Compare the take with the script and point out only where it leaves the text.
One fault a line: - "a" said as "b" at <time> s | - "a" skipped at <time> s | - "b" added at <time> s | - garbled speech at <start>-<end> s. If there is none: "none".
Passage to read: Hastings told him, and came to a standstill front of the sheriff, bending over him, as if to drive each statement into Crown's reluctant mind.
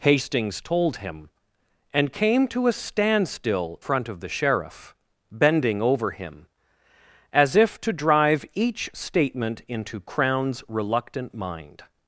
none